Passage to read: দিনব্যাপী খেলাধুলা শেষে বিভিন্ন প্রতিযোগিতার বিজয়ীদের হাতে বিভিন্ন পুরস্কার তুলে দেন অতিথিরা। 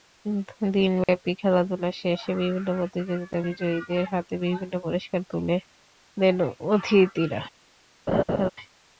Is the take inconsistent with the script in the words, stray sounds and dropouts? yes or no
yes